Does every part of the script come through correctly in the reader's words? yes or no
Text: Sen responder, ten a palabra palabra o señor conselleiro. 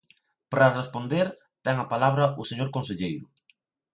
no